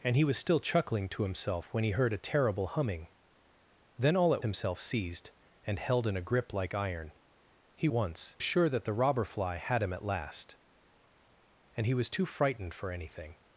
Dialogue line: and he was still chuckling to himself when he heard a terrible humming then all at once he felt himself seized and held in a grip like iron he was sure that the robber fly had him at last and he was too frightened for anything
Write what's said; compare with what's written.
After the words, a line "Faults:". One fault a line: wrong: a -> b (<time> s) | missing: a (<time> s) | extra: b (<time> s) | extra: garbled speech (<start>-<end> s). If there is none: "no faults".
and he was still chuckling to himself when he heard a terrible humming then all at himself seized and held in a grip like iron he once sure that the robber fly had him at last and he was too frightened for anything
Faults:
missing: once he felt (4.4 s)
wrong: was -> once (7.9 s)